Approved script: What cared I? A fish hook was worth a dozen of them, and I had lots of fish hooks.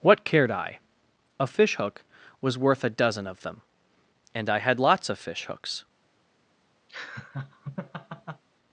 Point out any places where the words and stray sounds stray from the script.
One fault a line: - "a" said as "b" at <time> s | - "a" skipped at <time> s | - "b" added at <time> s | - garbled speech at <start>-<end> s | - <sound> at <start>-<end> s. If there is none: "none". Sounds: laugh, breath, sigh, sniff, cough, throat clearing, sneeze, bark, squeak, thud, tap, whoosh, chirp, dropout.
- laugh at 6.9-8.4 s